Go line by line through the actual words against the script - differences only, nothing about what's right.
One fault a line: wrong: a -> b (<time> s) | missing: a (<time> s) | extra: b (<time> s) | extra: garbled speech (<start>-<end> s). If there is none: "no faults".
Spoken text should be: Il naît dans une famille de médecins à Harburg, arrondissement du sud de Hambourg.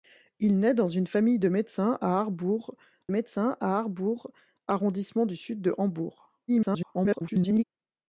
extra: médecins à Harburg (3.1 s)
extra: garbled speech (6.5-7.6 s)